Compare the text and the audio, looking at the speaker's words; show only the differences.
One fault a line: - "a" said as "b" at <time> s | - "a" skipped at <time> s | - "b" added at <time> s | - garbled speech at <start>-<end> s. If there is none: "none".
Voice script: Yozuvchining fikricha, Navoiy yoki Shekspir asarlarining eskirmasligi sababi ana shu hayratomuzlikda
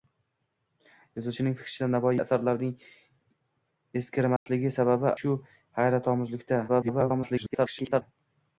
- "yoki Shekspir" skipped at 2.1 s
- "ana" skipped at 5.1 s
- garbled speech at 6.7-8.0 s